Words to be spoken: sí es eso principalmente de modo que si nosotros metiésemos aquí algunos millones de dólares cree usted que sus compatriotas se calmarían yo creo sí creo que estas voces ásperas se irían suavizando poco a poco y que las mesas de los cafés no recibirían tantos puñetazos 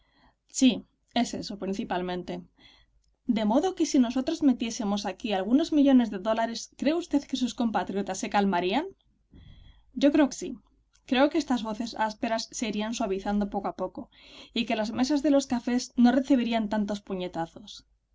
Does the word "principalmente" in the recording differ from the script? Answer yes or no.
no